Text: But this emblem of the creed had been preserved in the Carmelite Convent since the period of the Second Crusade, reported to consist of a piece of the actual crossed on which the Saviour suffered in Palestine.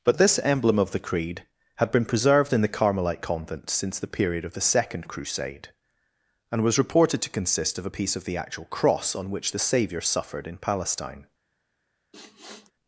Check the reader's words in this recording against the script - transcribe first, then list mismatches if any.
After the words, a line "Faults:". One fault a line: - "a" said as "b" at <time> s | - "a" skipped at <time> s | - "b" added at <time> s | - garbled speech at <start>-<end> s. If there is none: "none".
But this emblem of the creed had been preserved in the Carmelite Convent since the period of the Second Crusade, and was reported to consist of a piece of the actual cross on which the Saviour suffered in Palestine.
Faults:
- "and was" added at 6.5 s
- "crossed" said as "cross" at 8.7 s